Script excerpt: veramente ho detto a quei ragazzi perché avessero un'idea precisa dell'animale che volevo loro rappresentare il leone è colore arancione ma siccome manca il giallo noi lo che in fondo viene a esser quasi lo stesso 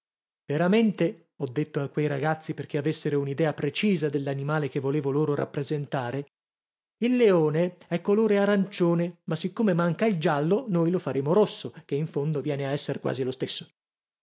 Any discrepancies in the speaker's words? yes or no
yes